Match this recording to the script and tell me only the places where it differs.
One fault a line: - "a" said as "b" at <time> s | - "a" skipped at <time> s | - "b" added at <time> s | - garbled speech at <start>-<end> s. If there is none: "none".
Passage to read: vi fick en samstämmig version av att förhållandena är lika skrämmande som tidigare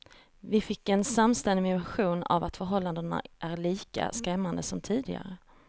none